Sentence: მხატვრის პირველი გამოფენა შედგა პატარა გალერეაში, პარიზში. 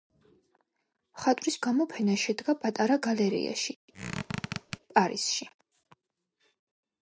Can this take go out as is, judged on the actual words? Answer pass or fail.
fail